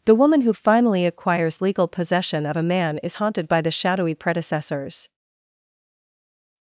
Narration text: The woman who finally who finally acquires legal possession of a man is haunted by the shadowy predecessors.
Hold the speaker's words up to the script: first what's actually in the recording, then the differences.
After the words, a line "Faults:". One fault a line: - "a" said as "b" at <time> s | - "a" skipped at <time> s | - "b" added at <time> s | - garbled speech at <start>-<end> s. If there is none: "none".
The woman who finally acquires legal possession of a man is haunted by the shadowy predecessors.
Faults:
- "who finally" skipped at 1.1 s